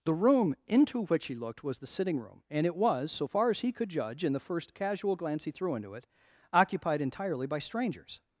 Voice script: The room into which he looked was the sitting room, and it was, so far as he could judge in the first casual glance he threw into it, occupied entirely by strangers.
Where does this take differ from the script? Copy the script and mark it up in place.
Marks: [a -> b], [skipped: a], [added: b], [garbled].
The room into which he looked was the sitting room, and it was, so far as he could judge in the first casual glance he threw into it, occupied entirely by strangers.